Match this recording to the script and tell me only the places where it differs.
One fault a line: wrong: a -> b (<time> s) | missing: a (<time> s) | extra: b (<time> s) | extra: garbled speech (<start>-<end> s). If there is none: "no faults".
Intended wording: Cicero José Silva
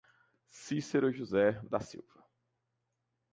extra: da (1.7 s)